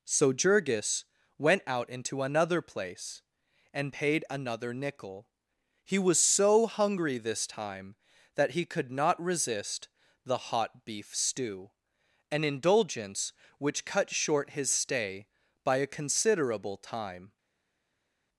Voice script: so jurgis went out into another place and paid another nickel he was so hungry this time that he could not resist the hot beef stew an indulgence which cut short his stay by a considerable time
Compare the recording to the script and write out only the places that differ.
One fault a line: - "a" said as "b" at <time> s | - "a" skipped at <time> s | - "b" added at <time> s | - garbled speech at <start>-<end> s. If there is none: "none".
none